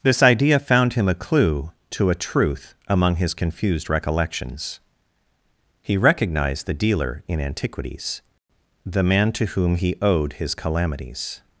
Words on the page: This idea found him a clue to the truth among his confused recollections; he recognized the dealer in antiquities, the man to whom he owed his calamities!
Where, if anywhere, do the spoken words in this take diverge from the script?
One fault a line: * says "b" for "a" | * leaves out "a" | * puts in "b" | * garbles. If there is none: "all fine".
* says "a" for "the"